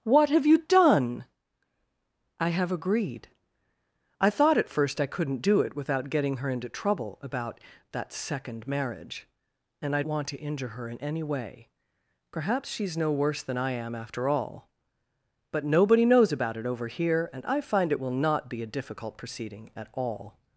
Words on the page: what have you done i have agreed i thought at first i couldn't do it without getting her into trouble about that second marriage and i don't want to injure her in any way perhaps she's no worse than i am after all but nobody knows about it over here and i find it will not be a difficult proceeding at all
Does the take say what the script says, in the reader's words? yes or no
no